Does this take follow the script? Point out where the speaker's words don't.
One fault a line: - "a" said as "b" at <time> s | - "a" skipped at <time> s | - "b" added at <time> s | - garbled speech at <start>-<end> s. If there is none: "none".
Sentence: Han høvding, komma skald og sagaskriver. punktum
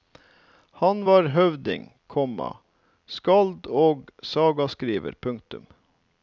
- "var" added at 1.0 s